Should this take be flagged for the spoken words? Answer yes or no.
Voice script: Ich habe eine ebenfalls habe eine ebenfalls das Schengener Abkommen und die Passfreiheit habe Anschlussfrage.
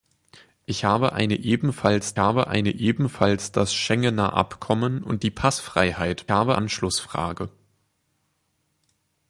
no